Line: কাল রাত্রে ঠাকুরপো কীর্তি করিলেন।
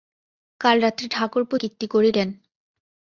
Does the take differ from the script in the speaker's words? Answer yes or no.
no